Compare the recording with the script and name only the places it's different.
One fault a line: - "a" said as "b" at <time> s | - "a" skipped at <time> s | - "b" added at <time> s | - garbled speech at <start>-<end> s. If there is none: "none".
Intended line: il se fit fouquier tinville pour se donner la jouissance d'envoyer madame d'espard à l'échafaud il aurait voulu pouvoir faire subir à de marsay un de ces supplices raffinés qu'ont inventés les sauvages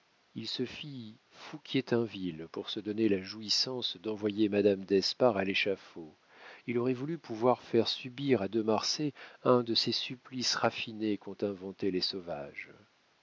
none